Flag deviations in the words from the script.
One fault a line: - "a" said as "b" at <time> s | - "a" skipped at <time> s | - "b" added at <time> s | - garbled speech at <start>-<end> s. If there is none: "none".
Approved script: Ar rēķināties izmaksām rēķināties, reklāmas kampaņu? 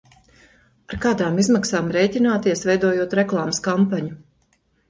- "rēķināties" said as "kādām" at 1.0 s
- "veidojot" added at 2.7 s